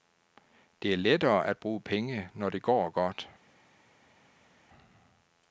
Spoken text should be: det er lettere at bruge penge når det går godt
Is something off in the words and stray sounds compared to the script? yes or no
no